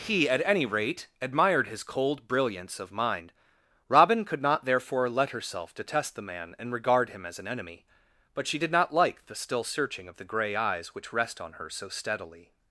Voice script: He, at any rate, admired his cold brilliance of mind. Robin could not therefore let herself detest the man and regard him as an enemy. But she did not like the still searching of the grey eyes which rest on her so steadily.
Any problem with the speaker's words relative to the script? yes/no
no